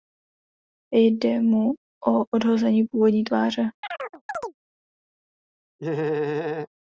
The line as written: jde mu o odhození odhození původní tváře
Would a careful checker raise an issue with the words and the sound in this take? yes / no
yes